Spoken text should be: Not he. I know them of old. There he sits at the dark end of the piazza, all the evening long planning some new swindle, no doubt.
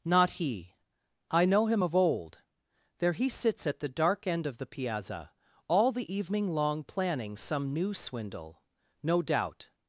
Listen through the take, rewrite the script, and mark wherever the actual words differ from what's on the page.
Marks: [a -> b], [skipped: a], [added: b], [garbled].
Not he. I know [them -> him] of old. There he sits at the dark end of the piazza, all the evening long planning some new swindle, no doubt.